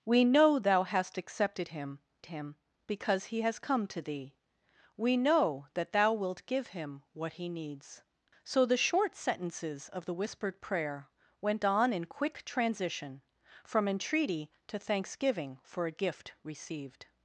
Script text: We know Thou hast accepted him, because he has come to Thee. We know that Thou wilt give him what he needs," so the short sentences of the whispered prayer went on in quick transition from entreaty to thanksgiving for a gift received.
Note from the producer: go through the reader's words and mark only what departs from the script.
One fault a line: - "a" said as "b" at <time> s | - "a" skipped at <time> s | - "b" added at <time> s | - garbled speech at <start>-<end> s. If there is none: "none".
- "him" added at 2.2 s